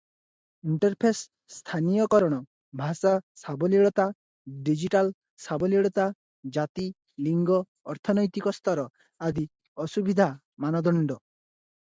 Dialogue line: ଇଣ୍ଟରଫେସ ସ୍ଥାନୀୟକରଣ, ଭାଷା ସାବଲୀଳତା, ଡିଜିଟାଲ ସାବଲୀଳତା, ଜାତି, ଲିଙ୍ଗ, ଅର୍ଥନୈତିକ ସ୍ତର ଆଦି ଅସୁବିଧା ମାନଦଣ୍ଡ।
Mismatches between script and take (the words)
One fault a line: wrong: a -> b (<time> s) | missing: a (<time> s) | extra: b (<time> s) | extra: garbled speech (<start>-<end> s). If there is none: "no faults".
no faults